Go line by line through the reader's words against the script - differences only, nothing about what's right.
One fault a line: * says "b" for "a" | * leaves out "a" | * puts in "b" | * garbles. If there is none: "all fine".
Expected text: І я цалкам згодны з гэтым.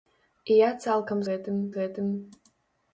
* says "гэтым" for "згодны"